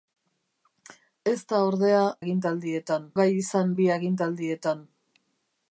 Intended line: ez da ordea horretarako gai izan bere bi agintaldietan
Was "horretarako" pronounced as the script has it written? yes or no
no